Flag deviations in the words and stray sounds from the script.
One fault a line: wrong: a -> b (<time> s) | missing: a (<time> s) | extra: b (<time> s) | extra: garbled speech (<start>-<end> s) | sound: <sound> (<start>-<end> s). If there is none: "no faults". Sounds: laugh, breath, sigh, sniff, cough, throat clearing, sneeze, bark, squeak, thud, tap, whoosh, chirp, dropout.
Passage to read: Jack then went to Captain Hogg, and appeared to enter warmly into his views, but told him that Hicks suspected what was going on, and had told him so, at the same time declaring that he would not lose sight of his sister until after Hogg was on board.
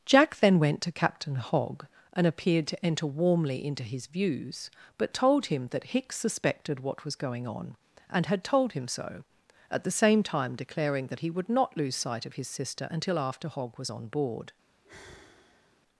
sound: sigh (14.8-15.8 s)